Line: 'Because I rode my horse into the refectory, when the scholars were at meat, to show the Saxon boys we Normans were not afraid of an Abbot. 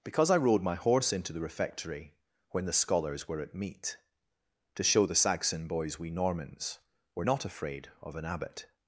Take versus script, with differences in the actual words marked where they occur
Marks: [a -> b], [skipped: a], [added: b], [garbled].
'Because I rode my horse into the refectory, when the scholars were at meat, to show the Saxon boys we Normans were not afraid of an Abbot.